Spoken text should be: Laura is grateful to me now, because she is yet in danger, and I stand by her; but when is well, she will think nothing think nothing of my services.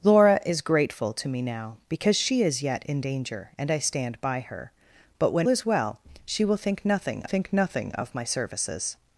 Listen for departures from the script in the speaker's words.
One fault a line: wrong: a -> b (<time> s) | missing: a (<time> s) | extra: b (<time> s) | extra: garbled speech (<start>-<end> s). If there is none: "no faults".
no faults